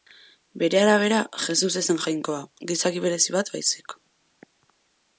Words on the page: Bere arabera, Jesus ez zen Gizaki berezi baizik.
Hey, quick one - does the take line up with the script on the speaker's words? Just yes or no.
no